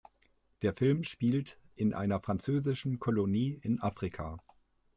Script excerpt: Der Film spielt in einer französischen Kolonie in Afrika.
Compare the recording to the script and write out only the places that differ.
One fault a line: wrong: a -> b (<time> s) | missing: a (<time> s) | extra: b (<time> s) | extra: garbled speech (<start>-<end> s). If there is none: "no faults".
no faults